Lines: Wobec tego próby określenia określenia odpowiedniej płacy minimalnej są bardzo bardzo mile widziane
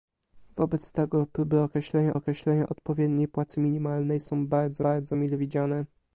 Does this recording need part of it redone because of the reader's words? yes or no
no